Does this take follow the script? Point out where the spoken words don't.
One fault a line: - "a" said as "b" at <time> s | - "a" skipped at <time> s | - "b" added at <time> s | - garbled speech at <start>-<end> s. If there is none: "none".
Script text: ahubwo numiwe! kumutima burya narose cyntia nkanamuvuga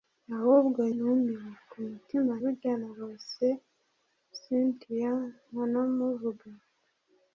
none